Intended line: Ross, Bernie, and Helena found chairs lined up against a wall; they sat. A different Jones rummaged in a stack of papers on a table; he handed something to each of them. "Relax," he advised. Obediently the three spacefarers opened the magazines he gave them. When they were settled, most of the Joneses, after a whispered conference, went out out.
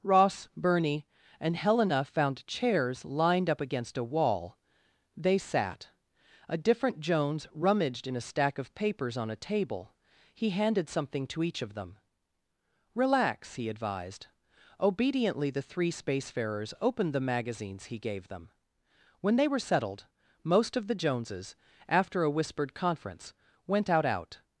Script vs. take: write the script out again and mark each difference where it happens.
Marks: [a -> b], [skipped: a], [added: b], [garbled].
Ross, Bernie, and Helena found chairs lined up against a wall; they sat. A different Jones rummaged in a stack of papers on a table; he handed something to each of them. "Relax," he advised. Obediently the three spacefarers opened the magazines he gave them. When they were settled, most of the Joneses, after a whispered conference, went out out.